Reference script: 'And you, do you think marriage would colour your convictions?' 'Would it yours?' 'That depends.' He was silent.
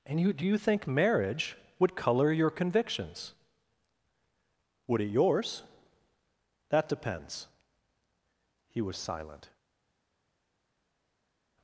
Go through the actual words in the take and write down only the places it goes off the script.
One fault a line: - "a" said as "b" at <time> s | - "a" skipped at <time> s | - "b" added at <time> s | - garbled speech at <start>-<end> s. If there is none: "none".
none